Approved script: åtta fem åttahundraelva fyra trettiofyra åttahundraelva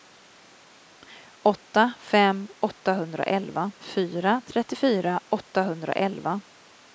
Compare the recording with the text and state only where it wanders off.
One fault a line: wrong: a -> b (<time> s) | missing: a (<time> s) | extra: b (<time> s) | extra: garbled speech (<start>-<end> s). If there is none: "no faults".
no faults